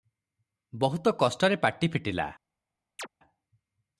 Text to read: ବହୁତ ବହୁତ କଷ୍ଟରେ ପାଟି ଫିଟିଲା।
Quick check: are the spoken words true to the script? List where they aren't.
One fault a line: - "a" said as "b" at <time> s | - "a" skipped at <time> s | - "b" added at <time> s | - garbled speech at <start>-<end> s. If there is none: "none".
- "ବହୁତ" skipped at 1.1 s